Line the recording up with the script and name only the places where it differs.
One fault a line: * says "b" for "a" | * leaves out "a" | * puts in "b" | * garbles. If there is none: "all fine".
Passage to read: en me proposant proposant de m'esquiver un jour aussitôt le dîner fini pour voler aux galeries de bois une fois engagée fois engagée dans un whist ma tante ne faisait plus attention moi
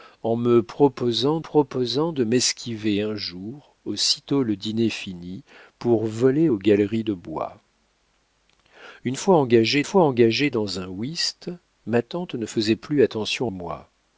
all fine